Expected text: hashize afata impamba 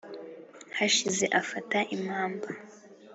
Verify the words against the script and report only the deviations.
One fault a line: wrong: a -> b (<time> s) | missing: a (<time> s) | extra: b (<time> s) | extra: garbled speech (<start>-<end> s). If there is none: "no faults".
no faults